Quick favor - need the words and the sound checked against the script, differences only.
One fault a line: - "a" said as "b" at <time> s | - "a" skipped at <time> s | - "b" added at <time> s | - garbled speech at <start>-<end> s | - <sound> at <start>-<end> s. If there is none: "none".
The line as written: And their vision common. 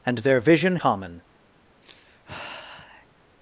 - sigh at 1.8-3.1 s